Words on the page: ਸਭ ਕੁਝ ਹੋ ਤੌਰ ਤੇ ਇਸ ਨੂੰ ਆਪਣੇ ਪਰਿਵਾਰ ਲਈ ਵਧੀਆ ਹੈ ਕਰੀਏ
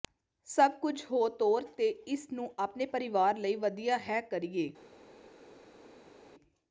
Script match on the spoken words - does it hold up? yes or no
yes